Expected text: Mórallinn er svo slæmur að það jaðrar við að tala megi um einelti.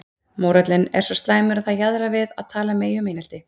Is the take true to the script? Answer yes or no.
yes